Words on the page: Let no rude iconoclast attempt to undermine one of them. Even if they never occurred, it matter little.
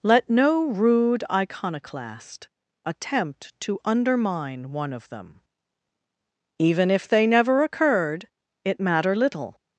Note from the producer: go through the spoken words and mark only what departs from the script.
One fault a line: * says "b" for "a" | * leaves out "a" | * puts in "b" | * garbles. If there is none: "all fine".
all fine